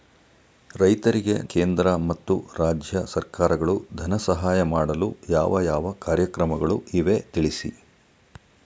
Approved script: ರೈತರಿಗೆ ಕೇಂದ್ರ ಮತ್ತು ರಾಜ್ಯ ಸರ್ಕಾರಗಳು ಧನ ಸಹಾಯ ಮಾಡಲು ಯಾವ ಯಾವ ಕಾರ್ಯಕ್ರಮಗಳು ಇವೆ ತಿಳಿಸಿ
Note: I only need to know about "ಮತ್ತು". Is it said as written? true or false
true